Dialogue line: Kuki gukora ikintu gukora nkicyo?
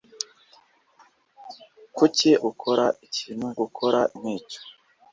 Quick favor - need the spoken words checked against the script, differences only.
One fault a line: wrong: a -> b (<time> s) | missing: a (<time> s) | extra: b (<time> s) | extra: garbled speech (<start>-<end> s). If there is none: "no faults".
no faults